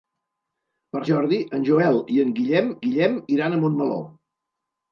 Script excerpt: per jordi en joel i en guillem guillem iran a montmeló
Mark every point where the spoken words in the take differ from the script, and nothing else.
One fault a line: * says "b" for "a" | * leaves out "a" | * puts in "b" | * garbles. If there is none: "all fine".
all fine